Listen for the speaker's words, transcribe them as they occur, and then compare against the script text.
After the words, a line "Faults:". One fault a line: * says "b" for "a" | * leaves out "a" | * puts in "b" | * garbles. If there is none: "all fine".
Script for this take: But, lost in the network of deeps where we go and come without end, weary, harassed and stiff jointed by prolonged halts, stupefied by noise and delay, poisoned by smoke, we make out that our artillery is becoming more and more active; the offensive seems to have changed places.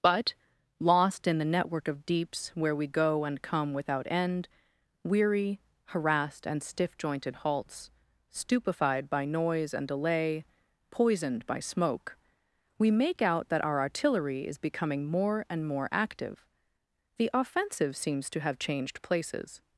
But, lost in the network of deeps where we go and come without end, weary, harassed and stiff jointed halts, stupefied by noise and delay, poisoned by smoke, we make out that our artillery is becoming more and more active; the offensive seems to have changed places.
Faults:
* leaves out "by prolonged"